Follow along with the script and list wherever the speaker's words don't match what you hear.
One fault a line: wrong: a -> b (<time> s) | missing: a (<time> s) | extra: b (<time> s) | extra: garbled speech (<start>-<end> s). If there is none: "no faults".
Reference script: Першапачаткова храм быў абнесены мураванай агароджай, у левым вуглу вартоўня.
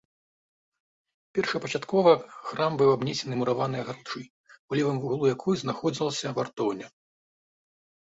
extra: якой знаходзілася (5.4 s)